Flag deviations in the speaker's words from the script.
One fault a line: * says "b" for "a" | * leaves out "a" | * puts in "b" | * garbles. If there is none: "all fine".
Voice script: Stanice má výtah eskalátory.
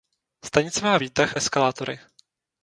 all fine